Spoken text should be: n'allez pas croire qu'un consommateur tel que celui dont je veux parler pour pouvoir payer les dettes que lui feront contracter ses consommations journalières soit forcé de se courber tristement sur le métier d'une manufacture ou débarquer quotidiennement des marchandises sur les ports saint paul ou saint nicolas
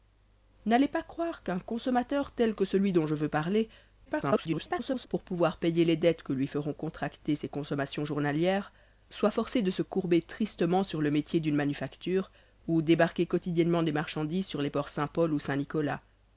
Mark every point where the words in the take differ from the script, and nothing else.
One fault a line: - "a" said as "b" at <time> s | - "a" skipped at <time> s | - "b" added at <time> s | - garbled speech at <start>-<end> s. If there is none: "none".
- garbled speech at 4.1-5.1 s